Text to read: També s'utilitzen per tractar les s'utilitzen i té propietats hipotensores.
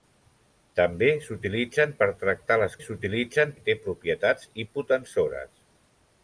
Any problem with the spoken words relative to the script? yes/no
no